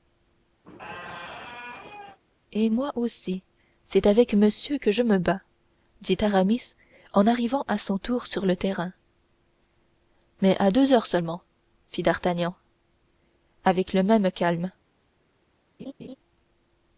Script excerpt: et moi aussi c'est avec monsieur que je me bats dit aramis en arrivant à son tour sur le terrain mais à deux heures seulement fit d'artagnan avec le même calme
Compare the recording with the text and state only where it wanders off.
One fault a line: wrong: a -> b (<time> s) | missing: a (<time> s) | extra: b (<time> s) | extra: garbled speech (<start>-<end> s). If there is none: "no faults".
no faults